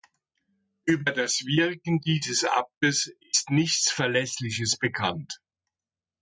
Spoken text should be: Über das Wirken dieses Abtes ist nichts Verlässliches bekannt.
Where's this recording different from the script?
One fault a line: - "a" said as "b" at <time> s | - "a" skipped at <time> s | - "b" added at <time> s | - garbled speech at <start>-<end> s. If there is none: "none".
none